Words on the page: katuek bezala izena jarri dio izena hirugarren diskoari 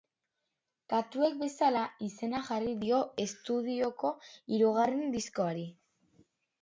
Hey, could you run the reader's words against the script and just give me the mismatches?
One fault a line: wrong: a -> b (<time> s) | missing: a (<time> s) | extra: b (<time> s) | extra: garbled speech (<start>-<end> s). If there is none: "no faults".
wrong: izena -> estudioko (3.3 s)